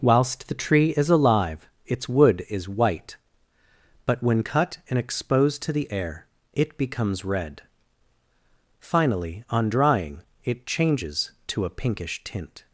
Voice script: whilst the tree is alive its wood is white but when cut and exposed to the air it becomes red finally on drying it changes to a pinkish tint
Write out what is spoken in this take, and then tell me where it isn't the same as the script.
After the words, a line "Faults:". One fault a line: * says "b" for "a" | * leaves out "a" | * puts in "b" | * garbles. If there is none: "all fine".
whilst the tree is alive its wood is white but when cut and exposed to the air it becomes red finally on drying it changes to a pinkish tint
Faults:
all fine